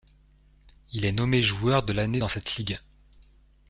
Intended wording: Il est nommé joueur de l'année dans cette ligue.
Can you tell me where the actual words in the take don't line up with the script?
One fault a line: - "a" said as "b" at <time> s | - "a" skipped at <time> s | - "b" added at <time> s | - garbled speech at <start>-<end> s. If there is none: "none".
none